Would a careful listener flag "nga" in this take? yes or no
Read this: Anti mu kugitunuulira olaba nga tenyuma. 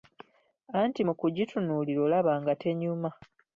no